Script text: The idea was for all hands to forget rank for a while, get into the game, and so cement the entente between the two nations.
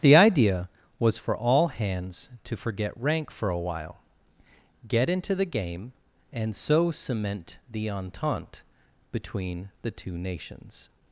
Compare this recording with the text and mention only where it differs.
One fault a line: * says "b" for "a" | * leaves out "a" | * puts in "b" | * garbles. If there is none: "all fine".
all fine